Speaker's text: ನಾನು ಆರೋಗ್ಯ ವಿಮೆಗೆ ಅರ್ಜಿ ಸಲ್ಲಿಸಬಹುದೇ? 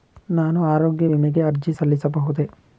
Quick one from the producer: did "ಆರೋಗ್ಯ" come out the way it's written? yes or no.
yes